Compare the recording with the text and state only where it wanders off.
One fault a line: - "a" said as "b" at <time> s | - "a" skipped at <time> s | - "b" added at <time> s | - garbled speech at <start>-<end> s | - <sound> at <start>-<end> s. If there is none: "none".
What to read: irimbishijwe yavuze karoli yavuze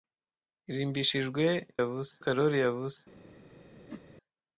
- whoosh at 3.9-4.0 s